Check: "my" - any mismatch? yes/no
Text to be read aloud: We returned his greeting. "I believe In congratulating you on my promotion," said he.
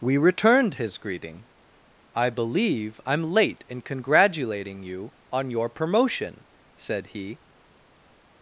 yes